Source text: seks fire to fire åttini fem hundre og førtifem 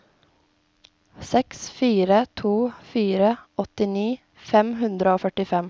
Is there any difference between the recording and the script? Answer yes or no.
no